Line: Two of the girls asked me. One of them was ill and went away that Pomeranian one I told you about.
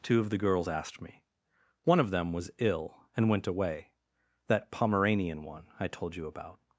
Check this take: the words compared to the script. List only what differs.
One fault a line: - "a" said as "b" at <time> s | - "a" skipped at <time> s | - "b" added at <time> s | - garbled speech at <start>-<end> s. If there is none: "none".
none